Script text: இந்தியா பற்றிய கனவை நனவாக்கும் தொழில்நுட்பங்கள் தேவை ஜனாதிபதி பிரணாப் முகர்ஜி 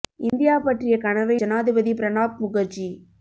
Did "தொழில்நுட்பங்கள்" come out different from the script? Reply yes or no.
yes